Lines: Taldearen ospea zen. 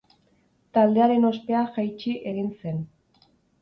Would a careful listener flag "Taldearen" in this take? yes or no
no